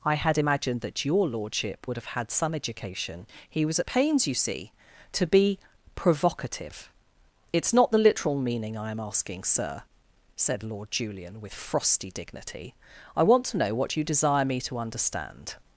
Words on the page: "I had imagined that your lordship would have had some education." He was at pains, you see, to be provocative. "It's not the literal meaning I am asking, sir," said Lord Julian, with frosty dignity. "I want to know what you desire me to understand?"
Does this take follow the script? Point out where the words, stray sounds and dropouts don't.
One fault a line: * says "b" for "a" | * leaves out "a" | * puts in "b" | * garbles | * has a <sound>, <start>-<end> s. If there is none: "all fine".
all fine